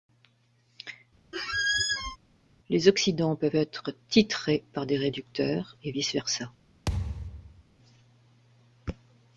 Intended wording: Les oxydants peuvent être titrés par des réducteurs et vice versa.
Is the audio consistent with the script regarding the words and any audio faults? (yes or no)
no